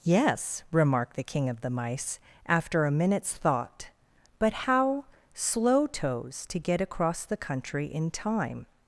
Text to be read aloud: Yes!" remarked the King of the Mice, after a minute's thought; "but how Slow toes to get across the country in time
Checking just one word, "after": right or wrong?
right